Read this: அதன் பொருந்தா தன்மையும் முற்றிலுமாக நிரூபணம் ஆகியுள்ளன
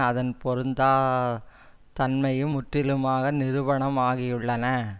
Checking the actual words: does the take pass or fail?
pass